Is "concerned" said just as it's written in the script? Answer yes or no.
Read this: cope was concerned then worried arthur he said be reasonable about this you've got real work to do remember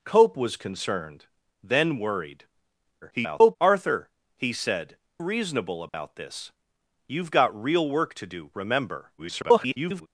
yes